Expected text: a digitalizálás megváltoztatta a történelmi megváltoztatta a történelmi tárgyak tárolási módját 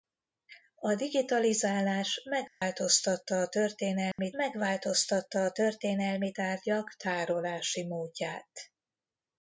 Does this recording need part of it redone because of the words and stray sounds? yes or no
yes